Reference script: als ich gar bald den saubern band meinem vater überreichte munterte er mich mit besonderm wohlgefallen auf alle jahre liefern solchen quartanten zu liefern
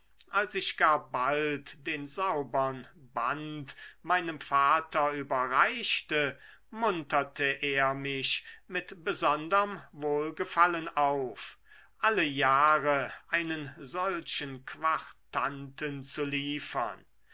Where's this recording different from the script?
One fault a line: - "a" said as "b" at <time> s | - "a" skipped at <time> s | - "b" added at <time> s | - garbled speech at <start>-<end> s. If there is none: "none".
- "liefern" said as "einen" at 13.3 s